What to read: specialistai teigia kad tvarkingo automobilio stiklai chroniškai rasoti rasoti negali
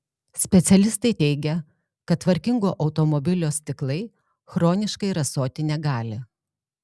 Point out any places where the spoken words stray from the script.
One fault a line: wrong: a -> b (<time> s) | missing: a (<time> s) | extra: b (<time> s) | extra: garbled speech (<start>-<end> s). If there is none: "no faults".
missing: rasoti (5.7 s)